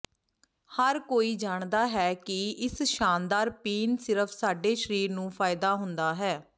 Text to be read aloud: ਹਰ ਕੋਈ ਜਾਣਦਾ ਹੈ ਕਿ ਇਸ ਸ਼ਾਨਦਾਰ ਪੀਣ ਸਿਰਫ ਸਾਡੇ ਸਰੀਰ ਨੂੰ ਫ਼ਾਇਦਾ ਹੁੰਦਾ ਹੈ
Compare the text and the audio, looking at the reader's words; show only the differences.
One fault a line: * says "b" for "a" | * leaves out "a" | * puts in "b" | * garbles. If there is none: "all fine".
all fine